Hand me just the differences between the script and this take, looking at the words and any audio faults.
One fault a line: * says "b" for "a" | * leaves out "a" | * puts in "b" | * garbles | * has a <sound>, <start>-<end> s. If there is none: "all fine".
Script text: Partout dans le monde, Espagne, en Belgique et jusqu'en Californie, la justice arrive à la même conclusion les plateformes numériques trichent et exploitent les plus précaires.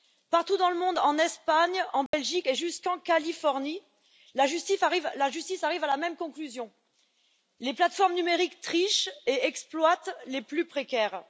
* puts in "en"
* has a dropout, 2.1-2.1 s